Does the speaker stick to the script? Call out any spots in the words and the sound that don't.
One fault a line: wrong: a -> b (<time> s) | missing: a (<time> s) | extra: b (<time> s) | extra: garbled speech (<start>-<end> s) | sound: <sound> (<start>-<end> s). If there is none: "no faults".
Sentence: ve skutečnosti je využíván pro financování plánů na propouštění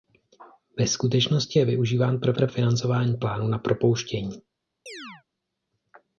extra: pro (2.3 s)
sound: chirp (4.9-5.2 s)